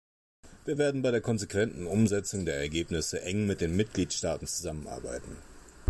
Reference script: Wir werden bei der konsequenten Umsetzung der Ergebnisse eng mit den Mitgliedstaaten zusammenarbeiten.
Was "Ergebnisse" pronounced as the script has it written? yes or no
yes